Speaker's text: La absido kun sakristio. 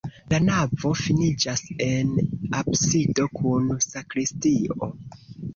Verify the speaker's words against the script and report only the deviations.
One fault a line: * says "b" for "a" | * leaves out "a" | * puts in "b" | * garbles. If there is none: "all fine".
* puts in "navo finiĝas en"